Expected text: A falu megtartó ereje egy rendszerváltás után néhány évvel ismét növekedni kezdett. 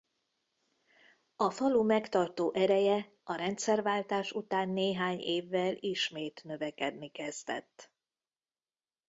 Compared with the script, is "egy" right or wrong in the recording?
wrong